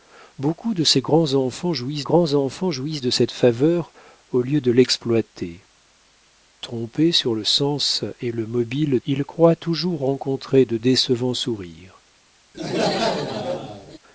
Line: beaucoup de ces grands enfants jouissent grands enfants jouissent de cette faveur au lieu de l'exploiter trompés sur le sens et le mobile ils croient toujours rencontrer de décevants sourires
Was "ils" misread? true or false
false